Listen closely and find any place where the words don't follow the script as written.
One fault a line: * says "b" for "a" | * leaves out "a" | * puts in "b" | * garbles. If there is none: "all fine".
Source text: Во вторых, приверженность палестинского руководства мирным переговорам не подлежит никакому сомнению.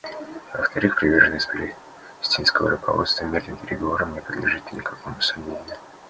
all fine